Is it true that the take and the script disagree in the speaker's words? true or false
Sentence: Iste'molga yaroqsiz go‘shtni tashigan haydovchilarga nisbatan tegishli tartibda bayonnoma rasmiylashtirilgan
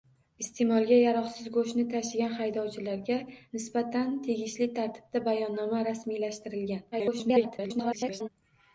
true